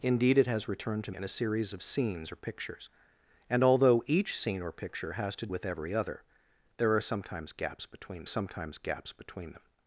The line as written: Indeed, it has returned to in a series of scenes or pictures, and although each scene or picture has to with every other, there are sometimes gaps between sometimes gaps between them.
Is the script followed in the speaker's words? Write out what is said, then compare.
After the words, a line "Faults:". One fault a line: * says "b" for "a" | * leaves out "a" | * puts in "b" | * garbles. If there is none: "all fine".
Indeed, it has returned to in a series of scenes or pictures, and although each scene or picture has to with every other, there are sometimes gaps between sometimes gaps between them.
Faults:
all fine